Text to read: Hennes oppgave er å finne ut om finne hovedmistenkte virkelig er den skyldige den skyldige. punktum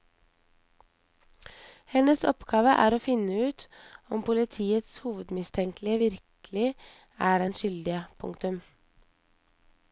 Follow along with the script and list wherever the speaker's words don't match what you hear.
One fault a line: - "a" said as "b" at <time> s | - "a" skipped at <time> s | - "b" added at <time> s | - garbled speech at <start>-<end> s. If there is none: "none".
- "finne" said as "politiets" at 4.3 s
- "den skyldige" skipped at 8.0 s